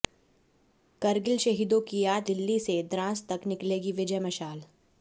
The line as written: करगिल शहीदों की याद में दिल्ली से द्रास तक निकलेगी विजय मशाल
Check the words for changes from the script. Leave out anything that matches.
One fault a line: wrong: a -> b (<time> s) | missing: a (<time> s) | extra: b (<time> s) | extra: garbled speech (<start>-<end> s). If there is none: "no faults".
missing: में (2.3 s)